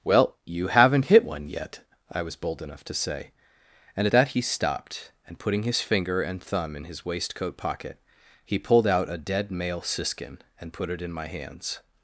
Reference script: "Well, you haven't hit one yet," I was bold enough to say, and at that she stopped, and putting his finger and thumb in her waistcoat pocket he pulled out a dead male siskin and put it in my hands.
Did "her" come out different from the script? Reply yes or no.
yes